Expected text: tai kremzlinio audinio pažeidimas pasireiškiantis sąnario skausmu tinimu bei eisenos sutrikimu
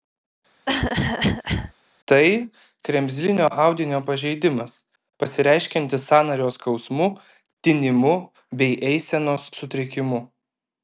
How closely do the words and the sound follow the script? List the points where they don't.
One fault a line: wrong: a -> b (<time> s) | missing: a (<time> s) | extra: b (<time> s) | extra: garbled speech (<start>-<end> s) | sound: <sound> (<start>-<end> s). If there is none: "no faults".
sound: cough (0.7-1.7 s)